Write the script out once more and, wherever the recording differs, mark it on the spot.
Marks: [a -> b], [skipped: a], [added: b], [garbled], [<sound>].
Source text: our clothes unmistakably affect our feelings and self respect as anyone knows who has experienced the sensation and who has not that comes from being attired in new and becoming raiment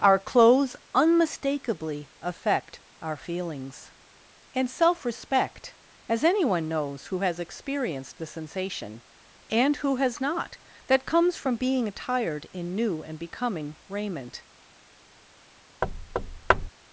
our clothes unmistakably affect our feelings and self respect as anyone knows who has experienced the sensation and who has not that comes from being attired in new and becoming raiment [thud]